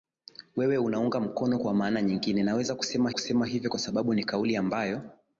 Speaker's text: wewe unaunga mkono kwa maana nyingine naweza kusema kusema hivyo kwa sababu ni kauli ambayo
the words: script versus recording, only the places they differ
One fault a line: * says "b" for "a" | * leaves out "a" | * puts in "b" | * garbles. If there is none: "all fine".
all fine